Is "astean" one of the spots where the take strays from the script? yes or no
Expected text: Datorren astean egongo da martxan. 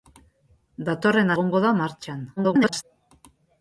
yes